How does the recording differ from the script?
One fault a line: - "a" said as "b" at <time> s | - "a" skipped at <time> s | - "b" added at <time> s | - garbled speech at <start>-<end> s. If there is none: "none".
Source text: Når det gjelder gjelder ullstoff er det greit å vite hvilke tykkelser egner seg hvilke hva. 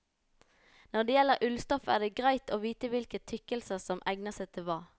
- "gjelder" skipped at 1.4 s
- "som" added at 3.8 s
- "hvilke" said as "til" at 4.5 s